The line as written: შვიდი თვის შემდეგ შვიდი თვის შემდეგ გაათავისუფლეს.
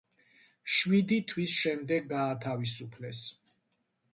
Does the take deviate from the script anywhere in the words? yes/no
yes